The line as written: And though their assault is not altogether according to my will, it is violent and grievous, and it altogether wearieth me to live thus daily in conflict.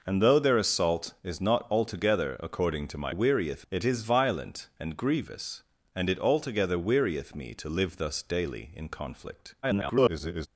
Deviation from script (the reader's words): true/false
true